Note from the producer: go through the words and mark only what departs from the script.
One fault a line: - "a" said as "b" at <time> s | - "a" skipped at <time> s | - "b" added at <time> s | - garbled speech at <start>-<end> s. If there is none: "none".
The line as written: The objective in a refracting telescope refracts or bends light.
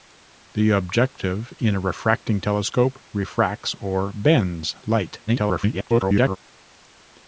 - garbled speech at 5.3-6.4 s